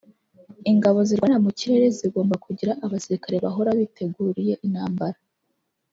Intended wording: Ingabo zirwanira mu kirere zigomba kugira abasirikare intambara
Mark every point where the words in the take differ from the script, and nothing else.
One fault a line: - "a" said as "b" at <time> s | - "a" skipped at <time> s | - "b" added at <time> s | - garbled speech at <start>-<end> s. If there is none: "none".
- "bahora biteguriye" added at 3.4 s